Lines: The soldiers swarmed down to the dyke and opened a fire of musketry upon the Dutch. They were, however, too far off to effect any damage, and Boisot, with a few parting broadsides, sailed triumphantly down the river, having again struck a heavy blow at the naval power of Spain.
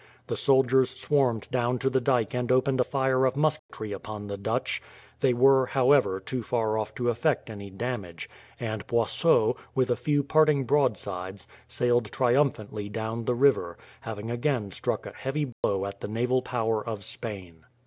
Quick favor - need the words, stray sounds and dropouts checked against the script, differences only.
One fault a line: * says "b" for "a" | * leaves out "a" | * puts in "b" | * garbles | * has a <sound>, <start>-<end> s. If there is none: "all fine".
* has a dropout, 3.6-3.7 s
* has a dropout, 15.5-15.6 s